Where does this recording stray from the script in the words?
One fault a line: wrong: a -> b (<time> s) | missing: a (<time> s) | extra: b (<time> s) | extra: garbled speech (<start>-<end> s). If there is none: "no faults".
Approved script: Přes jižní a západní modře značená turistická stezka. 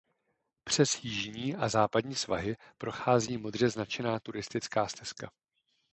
extra: svahy prochází (2.1 s)